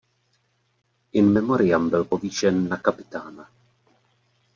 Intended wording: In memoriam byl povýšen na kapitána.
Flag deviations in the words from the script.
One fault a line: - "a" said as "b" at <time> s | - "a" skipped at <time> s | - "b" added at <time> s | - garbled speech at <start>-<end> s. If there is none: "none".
none